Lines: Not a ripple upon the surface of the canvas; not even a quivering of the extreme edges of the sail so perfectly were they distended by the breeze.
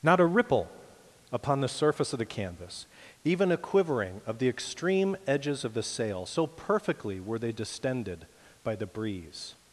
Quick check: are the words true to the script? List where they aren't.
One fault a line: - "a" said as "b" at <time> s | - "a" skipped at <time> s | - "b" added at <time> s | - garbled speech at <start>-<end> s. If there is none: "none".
- "not" skipped at 2.9 s